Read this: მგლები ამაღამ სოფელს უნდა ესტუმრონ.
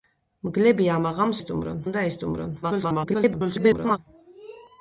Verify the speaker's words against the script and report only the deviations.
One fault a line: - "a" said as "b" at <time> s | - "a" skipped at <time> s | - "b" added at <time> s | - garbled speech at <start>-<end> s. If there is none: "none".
- "სოფელს" said as "ესტუმრონ" at 1.4 s
- garbled speech at 2.6-4.0 s